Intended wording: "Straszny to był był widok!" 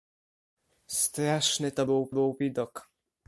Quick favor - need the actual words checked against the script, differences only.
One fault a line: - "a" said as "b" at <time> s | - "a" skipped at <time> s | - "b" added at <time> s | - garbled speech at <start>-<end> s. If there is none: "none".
none